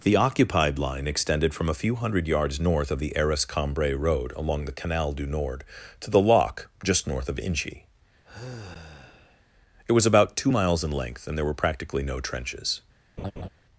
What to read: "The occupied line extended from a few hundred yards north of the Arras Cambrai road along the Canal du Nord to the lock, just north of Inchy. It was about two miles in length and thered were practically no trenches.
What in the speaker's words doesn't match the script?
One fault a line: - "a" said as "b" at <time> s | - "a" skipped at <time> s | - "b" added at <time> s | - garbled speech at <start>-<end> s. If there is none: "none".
- "thered" said as "there" at 11.3 s